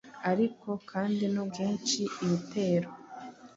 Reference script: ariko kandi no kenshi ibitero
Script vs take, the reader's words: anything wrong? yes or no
no